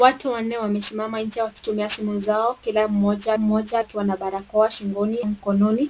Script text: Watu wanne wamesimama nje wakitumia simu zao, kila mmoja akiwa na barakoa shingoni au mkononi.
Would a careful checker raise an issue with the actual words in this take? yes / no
yes